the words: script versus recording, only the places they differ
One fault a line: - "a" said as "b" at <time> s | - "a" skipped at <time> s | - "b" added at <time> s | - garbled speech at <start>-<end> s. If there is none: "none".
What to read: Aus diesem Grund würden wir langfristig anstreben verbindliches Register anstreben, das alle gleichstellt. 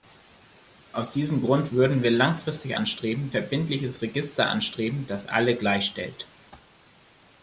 none